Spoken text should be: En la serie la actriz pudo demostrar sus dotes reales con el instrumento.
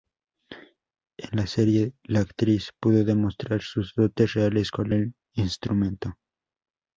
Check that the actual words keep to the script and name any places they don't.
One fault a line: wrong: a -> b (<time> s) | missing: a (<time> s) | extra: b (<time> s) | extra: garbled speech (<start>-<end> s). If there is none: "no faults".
no faults